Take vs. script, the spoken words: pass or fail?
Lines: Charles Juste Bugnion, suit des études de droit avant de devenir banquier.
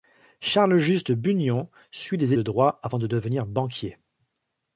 fail